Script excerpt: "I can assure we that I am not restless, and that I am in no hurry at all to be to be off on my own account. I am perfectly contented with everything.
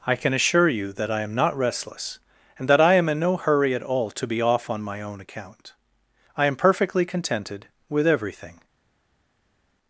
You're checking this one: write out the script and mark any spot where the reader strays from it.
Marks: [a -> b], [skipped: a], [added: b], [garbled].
"I can assure [we -> you] that I am not restless, and that I am in no hurry at all to be [skipped: to be] off on my own account. I am perfectly contented with everything.